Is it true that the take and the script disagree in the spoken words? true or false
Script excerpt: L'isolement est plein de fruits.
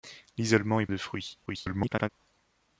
true